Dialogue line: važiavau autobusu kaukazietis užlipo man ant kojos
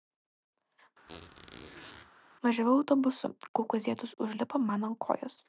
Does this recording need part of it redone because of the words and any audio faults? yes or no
yes